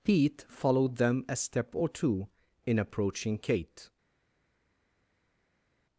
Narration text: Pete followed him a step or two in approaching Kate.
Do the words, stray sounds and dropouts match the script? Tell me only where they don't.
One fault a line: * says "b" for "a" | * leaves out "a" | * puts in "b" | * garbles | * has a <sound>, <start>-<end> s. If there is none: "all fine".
* says "them" for "him"